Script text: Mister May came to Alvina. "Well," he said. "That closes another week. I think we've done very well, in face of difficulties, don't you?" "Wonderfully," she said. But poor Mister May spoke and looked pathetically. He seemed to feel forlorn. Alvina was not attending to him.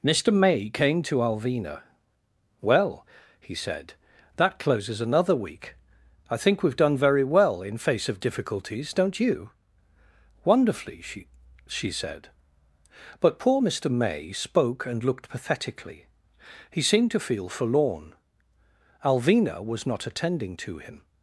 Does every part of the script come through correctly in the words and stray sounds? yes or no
no